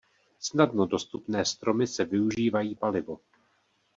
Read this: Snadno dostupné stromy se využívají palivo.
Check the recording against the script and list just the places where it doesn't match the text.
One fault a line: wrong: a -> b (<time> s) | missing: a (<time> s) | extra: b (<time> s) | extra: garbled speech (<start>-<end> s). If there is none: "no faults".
no faults